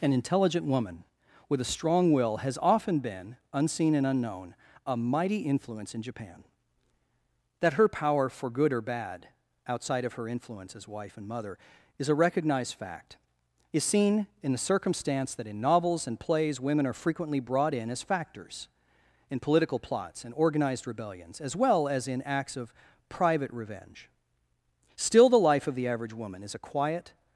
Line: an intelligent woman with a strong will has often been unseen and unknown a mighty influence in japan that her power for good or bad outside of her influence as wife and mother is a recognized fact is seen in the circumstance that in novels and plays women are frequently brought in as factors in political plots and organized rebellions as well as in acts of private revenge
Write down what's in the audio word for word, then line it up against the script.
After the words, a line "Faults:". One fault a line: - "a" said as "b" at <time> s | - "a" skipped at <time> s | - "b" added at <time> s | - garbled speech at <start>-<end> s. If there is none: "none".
an intelligent woman with a strong will has often been unseen and unknown a mighty influence in japan that her power for good or bad outside of her influence as wife and mother is a recognized fact is seen in the circumstance that in novels and plays women are frequently brought in as factors in political plots and organized rebellions as well as in acts of private revenge still the life of the average woman is a quiet
Faults:
- "still the life of the average woman is a quiet" added at 24.9 s